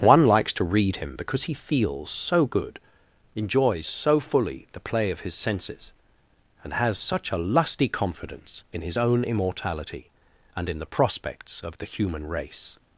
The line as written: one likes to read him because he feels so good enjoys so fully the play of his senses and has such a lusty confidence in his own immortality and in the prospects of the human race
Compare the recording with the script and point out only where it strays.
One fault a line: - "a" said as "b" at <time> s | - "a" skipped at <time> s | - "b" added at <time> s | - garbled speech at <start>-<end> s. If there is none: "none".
none